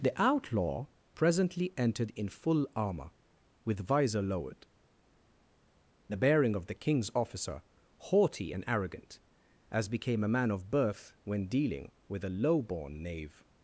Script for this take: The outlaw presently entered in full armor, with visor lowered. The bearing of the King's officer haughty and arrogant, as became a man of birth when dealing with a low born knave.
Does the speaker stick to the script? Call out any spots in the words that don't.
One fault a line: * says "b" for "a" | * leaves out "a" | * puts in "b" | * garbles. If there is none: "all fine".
all fine